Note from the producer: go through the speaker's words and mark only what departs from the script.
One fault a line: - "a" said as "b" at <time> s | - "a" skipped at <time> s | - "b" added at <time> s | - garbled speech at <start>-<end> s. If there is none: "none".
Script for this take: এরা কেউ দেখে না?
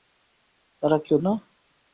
- "দেখে" skipped at 1.2 s